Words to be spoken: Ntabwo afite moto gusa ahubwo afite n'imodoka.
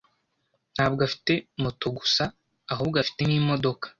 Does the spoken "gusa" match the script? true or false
true